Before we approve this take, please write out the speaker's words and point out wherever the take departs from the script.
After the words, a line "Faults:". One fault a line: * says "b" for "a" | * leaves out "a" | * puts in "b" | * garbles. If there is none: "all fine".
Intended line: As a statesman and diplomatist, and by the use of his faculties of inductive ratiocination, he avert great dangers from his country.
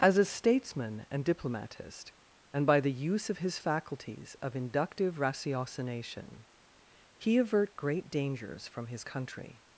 As a statesman and diplomatist, and by the use of his faculties of inductive ratiocination, he avert great dangers from his country.
Faults:
all fine